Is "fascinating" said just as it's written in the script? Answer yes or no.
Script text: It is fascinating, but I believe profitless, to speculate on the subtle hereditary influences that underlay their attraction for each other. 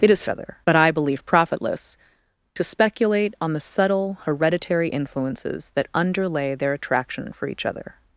no